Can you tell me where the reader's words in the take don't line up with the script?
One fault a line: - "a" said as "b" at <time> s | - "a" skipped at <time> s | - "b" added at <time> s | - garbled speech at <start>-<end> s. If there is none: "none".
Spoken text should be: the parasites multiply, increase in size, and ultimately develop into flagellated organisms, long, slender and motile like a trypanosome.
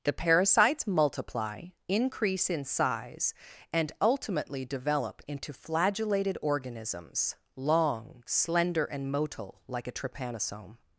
none